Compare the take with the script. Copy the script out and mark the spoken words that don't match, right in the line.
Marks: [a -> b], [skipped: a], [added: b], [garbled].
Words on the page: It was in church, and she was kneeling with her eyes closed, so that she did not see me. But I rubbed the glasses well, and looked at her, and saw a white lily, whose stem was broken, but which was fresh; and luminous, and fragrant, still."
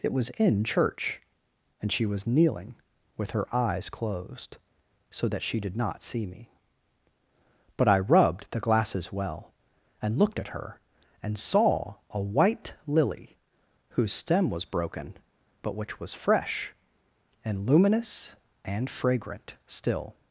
It was in church, and she was kneeling with her eyes closed, so that she did not see me. But I rubbed the glasses well, and looked at her, and saw a white lily, whose stem was broken, but which was fresh; and luminous, and fragrant, still."